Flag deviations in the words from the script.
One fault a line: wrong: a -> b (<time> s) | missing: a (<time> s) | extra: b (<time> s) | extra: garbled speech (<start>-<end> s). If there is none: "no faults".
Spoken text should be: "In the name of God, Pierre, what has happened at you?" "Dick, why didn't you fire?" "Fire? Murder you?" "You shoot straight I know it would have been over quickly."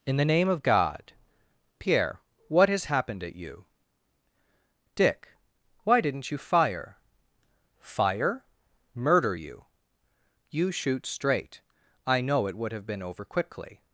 no faults